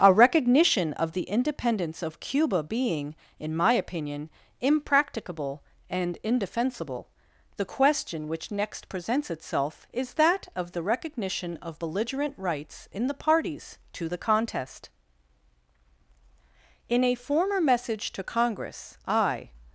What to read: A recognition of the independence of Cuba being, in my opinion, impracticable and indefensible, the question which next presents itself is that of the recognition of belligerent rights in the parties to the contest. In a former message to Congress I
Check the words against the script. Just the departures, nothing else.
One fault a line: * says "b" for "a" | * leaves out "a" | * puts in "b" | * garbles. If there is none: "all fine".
all fine